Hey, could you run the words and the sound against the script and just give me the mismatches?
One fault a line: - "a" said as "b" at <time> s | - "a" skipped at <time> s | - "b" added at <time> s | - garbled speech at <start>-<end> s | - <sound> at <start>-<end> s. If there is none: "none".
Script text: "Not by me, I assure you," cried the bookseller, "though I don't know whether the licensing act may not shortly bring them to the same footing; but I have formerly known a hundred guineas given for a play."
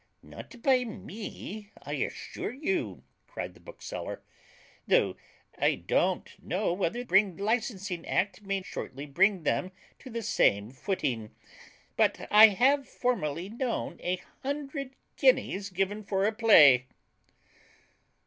- "the" said as "bring" at 7.0 s
- "not" skipped at 8.6 s